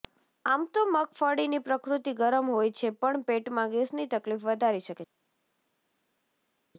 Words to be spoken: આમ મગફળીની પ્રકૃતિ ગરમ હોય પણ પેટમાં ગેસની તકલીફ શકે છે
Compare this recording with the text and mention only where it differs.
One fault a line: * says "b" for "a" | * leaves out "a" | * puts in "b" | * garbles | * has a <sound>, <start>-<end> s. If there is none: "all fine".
* puts in "તો"
* puts in "છે"
* puts in "વધારી"